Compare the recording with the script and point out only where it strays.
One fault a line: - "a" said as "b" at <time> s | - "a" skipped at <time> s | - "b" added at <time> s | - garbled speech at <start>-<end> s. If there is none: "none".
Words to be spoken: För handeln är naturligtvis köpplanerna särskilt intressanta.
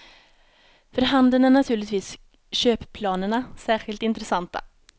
none